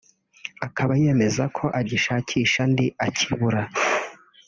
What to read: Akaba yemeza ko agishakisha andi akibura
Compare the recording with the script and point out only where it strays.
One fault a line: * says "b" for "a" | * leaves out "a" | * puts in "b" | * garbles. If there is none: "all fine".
all fine